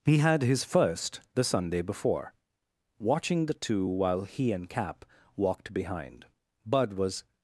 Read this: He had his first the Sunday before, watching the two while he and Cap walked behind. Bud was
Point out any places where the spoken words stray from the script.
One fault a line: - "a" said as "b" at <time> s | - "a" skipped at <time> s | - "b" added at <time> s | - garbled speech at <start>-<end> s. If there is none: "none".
none